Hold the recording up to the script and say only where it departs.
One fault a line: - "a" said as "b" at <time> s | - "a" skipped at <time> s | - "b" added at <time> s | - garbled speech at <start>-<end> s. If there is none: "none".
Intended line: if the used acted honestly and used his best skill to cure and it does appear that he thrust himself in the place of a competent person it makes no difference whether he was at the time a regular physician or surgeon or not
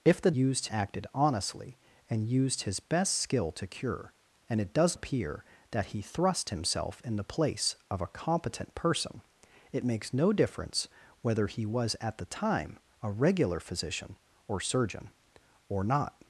none